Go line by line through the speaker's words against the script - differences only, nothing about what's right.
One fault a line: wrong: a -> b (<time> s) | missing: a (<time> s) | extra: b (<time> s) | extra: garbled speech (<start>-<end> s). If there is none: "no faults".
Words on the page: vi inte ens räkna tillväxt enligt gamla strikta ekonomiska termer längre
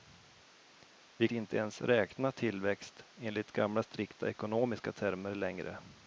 no faults